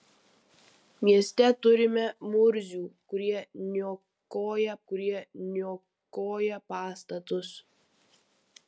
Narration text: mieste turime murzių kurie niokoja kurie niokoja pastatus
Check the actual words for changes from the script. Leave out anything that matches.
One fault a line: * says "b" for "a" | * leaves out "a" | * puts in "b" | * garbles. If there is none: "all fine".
all fine